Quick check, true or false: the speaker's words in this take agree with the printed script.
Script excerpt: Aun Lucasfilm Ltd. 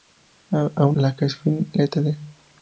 true